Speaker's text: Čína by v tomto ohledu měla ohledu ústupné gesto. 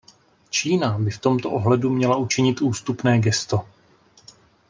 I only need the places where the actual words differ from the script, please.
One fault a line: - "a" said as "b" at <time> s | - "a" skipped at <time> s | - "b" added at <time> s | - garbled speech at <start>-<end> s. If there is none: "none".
- "ohledu" said as "učinit" at 2.1 s